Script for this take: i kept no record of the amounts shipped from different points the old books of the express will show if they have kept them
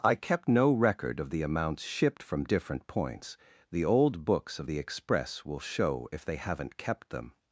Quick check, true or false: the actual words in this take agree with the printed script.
false